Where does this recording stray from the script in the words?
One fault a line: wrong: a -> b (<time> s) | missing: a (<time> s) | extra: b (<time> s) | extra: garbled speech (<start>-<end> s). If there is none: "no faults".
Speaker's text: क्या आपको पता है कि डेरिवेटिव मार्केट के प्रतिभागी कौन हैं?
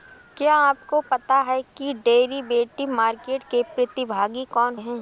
no faults